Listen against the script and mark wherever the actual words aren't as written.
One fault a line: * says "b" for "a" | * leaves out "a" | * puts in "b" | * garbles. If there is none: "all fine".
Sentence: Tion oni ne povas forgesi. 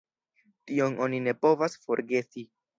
all fine